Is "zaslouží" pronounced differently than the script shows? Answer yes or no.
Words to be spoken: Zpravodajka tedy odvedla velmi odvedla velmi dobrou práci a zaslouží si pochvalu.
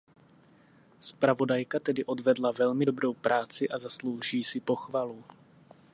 no